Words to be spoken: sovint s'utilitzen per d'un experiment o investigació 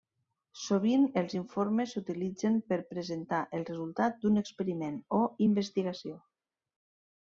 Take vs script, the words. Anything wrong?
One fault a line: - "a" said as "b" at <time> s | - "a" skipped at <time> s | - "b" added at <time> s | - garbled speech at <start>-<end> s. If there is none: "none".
- "els informes" added at 1.2 s
- "presentar el resultat" added at 2.9 s